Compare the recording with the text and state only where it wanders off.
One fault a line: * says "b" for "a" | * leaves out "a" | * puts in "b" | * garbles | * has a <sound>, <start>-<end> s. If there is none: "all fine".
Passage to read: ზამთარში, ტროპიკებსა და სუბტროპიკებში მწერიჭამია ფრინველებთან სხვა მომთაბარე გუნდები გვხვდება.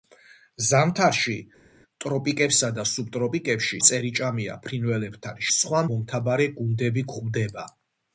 all fine